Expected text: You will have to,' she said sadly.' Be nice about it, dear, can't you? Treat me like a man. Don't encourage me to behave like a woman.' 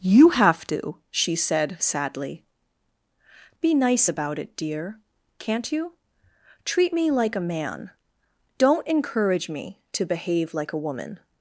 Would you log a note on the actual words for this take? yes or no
yes